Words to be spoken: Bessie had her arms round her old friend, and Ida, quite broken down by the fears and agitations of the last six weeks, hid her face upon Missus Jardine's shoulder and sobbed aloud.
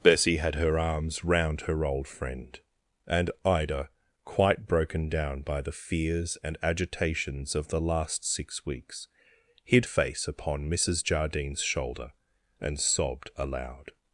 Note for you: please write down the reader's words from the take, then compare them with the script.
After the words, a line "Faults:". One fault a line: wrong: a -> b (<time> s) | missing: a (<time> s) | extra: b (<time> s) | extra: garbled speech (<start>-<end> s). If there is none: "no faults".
Bessie had her arms round her old friend, and Ida, quite broken down by the fears and agitations of the last six weeks, hid face upon Missus Jardine's shoulder and sobbed aloud.
Faults:
missing: her (9.9 s)